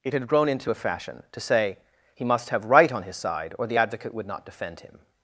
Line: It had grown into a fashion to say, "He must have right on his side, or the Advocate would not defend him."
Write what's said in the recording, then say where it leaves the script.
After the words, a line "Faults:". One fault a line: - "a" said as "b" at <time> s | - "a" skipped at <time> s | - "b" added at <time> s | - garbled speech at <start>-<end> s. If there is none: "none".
It had grown into a fashion to say, "He must have right on his side, or the Advocate would not defend him."
Faults:
none